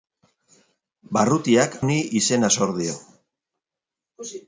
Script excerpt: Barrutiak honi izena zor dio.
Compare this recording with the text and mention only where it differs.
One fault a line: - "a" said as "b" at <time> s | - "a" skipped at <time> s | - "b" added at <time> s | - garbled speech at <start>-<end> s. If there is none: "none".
none